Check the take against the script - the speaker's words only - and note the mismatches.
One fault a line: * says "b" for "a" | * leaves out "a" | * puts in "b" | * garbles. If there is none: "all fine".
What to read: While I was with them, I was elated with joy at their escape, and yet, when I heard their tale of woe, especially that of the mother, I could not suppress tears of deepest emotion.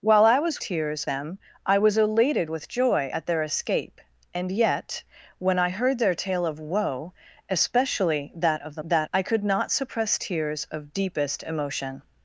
* says "tears" for "with"
* says "that" for "mother"